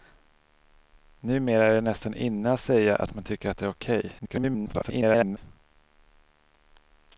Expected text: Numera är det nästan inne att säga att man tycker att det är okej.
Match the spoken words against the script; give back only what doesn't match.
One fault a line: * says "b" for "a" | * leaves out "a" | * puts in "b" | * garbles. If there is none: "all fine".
* garbles